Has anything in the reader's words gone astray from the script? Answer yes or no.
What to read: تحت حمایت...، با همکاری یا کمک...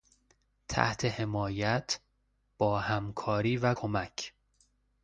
yes